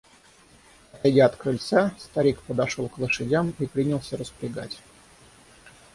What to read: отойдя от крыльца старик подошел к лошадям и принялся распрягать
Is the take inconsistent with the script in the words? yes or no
no